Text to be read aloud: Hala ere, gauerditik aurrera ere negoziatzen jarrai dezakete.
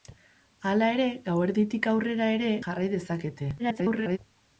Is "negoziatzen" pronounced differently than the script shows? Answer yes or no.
yes